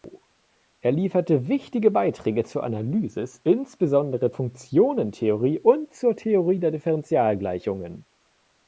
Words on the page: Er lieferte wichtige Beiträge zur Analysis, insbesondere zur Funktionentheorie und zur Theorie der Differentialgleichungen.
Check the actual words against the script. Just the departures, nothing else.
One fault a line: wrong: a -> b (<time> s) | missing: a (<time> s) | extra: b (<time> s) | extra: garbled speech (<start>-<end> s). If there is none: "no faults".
missing: zur (4.3 s)